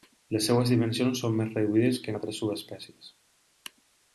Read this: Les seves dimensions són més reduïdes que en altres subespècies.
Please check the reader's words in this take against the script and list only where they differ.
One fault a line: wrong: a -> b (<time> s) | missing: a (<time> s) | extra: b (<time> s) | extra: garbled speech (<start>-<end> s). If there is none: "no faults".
no faults